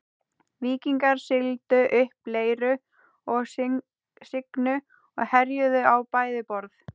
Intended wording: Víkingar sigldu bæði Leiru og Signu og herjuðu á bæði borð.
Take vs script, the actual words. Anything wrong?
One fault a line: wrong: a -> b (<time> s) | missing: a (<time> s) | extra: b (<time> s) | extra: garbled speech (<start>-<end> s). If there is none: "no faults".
wrong: bæði -> upp (2.0 s)